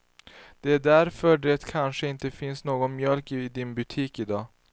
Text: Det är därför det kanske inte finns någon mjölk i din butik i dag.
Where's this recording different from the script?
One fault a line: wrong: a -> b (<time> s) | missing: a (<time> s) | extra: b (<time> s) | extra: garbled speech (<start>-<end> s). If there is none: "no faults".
no faults